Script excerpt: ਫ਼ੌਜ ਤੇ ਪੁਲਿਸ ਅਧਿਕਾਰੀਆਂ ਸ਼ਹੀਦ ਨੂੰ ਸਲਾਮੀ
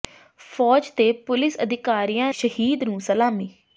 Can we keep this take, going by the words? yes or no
yes